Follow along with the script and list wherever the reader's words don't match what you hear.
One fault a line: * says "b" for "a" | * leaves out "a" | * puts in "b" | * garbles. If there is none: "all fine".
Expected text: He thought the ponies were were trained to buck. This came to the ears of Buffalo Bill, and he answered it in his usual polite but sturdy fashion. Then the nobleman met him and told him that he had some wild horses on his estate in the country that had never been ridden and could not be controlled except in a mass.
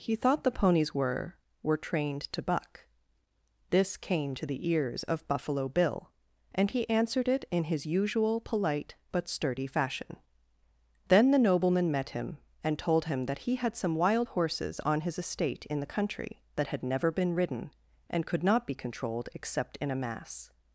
all fine